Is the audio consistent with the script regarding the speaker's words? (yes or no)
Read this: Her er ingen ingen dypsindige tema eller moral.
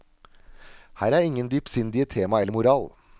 no